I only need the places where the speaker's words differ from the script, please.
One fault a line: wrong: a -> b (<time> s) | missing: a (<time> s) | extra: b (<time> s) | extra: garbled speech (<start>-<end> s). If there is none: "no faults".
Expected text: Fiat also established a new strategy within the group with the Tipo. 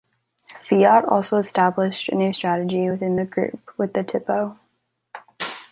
no faults